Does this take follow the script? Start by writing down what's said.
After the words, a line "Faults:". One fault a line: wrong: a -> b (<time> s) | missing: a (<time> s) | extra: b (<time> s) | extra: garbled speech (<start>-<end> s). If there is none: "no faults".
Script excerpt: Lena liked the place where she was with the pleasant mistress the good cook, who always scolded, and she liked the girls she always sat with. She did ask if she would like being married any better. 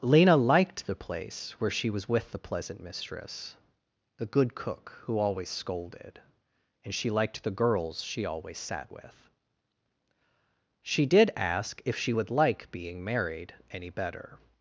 Lena liked the place where she was with the pleasant mistress the good cook, who always scolded, and she liked the girls she always sat with. She did ask if she would like being married any better.
Faults:
no faults